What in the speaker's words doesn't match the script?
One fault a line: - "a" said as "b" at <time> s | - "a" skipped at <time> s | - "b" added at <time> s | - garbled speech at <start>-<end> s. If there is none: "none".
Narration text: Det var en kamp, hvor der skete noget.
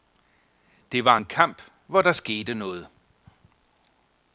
none